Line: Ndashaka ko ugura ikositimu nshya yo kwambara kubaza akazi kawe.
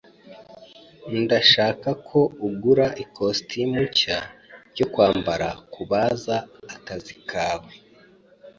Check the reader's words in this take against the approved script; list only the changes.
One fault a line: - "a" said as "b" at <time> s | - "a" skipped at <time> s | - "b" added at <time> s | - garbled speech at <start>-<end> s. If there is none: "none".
none